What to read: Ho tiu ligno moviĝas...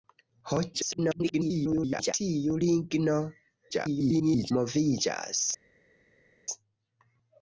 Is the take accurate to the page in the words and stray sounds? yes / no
no